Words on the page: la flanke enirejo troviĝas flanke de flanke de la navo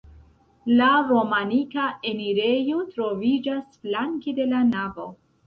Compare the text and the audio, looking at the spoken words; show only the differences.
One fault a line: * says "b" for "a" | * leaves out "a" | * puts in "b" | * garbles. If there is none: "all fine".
* says "romanika" for "flanke"
* leaves out "flanke de"